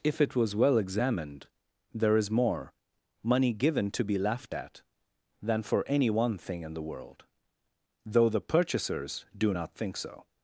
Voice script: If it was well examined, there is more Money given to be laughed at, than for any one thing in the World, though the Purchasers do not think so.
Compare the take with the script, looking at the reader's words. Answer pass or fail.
pass